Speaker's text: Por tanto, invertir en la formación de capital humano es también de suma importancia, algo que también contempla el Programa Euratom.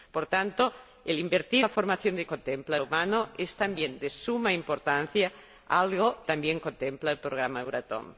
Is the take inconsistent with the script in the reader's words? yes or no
yes